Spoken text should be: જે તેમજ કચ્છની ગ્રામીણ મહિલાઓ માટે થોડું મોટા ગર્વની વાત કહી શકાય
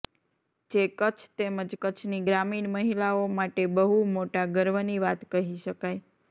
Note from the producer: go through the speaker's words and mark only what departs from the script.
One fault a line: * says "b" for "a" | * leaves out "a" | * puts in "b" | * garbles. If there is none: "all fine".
* puts in "કચ્છ"
* says "બહુ" for "થોડું"